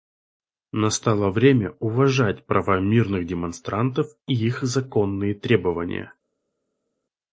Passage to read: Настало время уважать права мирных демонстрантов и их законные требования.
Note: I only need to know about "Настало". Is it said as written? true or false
true